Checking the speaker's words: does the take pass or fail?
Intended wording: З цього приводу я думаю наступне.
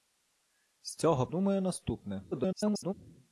fail